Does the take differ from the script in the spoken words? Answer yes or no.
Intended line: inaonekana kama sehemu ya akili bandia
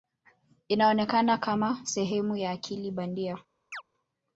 no